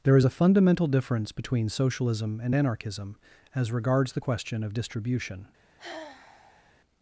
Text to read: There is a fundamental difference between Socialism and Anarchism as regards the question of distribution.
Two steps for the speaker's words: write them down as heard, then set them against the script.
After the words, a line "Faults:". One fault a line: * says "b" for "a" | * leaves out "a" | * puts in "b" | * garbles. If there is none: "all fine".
There is a fundamental difference between Socialism and Anarchism as regards the question of distribution.
Faults:
all fine